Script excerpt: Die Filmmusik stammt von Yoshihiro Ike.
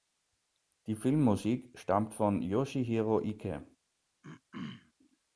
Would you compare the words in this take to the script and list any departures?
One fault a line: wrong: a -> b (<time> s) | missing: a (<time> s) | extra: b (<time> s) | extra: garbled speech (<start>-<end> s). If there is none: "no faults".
no faults